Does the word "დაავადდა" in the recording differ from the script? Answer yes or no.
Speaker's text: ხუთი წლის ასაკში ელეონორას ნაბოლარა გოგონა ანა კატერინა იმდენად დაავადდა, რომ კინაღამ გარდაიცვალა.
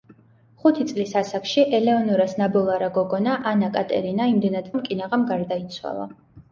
yes